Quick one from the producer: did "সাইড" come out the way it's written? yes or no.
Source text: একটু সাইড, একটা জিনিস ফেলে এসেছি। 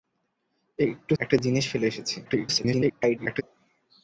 no